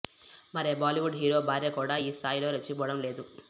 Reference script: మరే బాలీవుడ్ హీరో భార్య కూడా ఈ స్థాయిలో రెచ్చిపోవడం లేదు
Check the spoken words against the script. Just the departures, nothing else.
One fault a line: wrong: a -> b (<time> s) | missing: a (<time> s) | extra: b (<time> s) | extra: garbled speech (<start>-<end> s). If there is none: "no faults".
no faults